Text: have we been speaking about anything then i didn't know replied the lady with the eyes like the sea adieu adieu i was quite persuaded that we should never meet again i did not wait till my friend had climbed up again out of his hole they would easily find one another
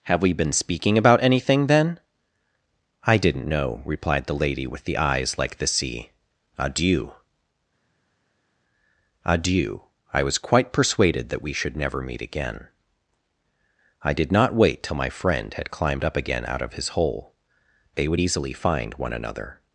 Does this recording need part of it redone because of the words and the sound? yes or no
no